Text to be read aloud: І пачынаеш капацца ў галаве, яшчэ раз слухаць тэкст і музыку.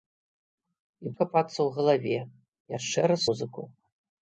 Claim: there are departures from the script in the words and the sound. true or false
true